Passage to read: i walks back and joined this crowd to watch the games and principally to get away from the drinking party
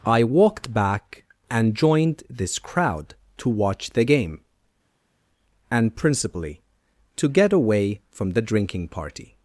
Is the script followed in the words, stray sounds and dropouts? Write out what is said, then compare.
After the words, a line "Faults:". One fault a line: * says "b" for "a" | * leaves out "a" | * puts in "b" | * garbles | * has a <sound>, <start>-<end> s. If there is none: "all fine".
i walked back and joined this crowd to watch the game and principally to get away from the drinking party
Faults:
* says "walked" for "walks"
* says "game" for "games"